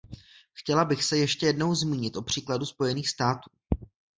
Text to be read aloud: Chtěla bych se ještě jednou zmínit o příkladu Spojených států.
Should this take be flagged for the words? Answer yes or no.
no